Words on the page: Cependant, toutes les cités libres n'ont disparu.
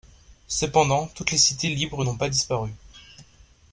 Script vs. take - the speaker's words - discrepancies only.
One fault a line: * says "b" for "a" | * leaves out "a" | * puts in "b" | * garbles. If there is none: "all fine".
* puts in "pas"